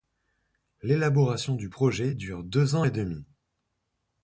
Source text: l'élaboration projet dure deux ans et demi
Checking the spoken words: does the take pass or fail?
fail